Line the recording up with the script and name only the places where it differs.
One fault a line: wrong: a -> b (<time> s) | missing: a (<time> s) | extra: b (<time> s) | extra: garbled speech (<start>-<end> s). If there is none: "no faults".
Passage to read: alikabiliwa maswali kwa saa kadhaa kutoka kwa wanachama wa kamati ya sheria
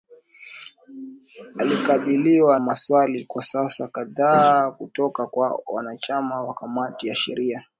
no faults